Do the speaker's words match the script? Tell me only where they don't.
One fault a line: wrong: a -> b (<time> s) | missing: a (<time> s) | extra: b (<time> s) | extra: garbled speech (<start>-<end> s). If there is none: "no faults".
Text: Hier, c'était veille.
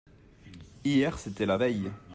extra: la (1.4 s)